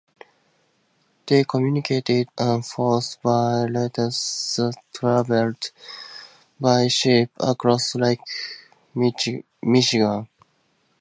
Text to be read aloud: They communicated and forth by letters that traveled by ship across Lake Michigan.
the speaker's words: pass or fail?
pass